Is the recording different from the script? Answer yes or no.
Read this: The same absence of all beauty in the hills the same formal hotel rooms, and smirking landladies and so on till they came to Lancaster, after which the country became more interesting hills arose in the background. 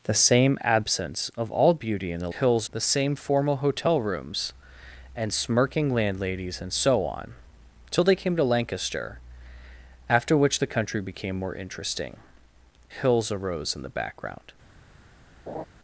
no